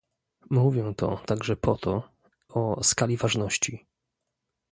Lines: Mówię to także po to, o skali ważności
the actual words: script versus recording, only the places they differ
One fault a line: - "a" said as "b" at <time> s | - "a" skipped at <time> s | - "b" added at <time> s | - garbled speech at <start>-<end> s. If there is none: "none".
none